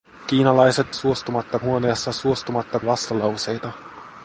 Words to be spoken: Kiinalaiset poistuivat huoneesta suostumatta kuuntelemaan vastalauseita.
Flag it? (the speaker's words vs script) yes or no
yes